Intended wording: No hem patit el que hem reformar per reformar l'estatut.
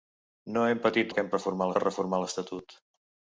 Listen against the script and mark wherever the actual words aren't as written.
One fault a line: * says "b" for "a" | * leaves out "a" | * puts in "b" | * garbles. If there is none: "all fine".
all fine